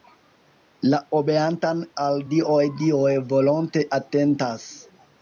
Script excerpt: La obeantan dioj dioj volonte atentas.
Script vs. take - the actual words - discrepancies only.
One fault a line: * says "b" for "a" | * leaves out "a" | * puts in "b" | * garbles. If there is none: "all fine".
* puts in "al"